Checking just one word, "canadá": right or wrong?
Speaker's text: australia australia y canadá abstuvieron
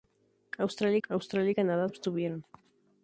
right